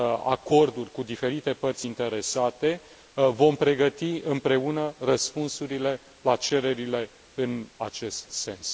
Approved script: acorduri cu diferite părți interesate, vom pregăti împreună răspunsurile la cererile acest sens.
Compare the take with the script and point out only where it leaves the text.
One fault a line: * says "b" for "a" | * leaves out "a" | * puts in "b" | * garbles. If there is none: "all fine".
* puts in "în"